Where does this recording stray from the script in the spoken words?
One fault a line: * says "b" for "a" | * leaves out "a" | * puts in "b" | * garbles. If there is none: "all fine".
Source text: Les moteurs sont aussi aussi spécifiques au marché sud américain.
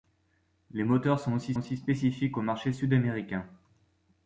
all fine